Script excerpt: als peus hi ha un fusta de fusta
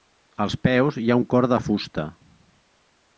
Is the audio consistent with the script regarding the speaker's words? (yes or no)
no